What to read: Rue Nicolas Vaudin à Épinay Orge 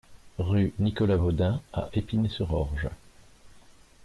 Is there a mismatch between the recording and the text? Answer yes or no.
yes